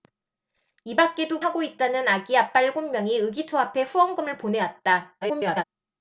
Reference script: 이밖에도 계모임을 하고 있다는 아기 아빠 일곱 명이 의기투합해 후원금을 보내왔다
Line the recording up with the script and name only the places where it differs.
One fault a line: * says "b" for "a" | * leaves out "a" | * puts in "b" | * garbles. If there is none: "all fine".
* leaves out "계모임을"
* garbles